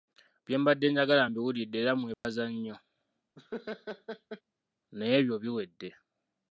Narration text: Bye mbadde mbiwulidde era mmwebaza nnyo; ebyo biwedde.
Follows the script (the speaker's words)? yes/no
no